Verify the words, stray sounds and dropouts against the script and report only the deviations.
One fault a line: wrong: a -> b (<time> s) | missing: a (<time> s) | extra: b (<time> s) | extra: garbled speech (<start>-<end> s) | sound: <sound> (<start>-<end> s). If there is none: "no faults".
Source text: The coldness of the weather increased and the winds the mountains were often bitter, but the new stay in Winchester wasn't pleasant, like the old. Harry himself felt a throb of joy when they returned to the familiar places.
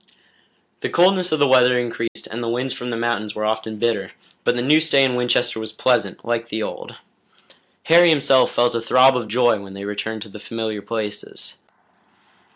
sound: dropout (2.1-2.2 s)
extra: from (2.7 s)
wrong: wasn't -> was (5.6 s)